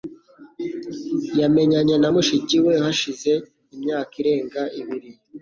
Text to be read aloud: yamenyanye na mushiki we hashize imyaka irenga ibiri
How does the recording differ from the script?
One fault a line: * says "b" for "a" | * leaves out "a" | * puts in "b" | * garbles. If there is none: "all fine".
all fine